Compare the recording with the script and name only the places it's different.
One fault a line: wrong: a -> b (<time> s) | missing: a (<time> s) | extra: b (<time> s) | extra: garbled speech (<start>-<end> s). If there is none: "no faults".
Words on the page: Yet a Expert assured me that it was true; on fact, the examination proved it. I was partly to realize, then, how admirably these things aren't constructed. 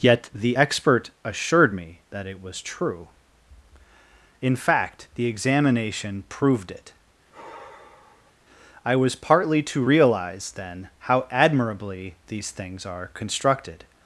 wrong: a -> the (0.3 s)
wrong: on -> in (4.4 s)
wrong: aren't -> are (12.9 s)